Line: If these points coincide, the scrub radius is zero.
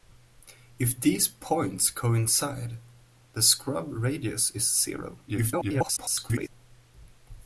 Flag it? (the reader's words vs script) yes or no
yes